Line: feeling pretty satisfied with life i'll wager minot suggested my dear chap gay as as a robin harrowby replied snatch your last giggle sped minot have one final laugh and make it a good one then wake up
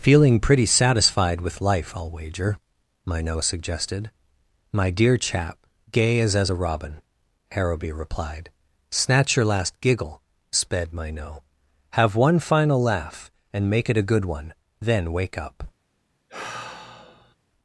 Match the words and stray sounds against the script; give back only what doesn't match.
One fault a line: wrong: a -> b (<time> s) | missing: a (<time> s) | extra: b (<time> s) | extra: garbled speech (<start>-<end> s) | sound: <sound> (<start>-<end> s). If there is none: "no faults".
sound: sigh (16.3-17.4 s)